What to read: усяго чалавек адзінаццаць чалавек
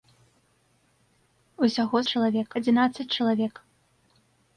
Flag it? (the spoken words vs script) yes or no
no